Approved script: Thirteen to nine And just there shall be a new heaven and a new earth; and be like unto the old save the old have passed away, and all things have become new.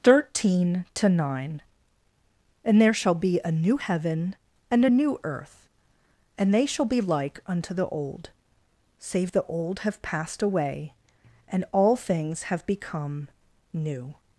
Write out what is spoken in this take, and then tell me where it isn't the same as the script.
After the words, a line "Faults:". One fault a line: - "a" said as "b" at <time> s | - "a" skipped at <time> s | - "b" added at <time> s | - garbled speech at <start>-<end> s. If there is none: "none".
Thirteen to nine And there shall be a new heaven and a new earth; and they shall be like unto the old save the old have passed away, and all things have become new.
Faults:
- "just" skipped at 2.8 s
- "they shall" added at 6.5 s